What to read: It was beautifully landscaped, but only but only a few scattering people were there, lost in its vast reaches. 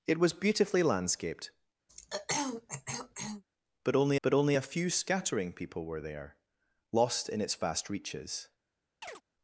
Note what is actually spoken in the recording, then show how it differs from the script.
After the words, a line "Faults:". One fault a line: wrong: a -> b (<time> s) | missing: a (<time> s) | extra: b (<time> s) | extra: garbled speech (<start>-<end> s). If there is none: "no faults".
It was beautifully landscaped, but only but only a few scattering people were there, lost in its vast reaches.
Faults:
no faults